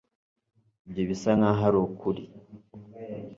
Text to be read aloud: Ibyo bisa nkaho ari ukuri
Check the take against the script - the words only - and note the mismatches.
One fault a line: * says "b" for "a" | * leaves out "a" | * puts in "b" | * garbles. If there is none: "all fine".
all fine